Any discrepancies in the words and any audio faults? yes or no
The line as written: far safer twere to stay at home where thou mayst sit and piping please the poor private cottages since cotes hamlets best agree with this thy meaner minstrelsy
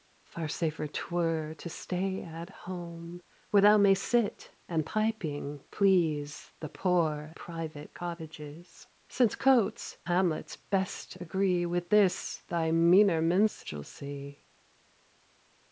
no